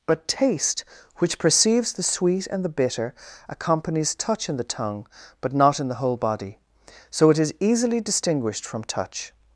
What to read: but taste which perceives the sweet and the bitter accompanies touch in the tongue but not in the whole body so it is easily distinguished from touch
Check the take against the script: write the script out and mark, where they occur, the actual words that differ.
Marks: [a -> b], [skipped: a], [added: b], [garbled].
but taste which perceives the sweet and the bitter accompanies touch in the tongue but not in the whole body so it is easily distinguished from touch